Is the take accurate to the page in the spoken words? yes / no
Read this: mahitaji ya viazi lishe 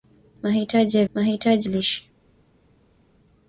no